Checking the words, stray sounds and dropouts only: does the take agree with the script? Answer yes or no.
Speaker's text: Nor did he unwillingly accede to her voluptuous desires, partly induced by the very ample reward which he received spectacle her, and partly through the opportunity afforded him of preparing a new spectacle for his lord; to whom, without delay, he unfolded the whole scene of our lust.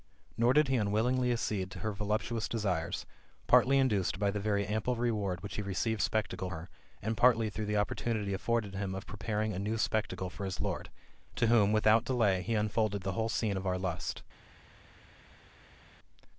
yes